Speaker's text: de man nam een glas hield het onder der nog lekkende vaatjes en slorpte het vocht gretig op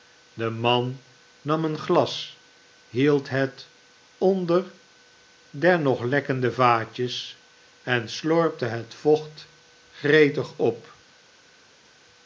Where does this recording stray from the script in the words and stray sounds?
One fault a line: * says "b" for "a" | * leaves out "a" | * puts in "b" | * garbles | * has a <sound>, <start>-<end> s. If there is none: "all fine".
all fine